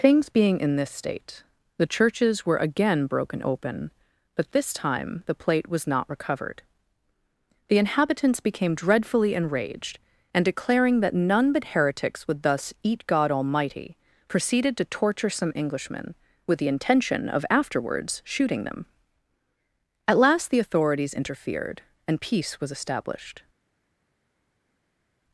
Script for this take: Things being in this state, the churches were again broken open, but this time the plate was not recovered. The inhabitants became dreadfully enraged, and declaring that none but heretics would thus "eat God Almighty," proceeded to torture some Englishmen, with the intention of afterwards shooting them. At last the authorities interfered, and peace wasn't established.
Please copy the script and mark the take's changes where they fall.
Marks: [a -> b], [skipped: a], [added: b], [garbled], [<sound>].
Things being in this state, the churches were again broken open, but this time the plate was not recovered. The inhabitants became dreadfully enraged, and declaring that none but heretics would thus "eat God Almighty," proceeded to torture some Englishmen, with the intention of afterwards shooting them. At last the authorities interfered, and peace [wasn't -> was] established.